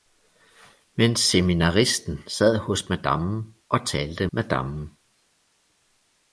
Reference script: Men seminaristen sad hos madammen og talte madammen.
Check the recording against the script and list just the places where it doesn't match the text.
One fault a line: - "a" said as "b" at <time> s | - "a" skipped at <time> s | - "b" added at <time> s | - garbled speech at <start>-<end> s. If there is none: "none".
none